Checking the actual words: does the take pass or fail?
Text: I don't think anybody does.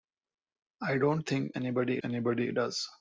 fail